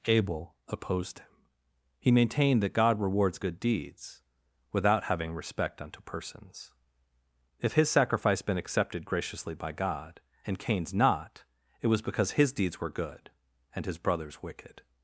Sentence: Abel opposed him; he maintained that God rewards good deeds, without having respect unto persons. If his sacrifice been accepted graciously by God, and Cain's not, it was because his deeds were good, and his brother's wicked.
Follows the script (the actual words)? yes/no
yes